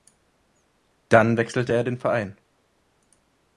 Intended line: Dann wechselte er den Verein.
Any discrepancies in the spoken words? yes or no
no